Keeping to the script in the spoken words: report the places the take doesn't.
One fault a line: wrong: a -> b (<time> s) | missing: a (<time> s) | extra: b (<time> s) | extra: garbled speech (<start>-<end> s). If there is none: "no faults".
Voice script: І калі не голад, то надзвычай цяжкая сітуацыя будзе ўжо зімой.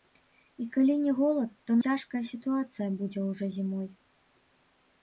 missing: надзвычай (1.8 s)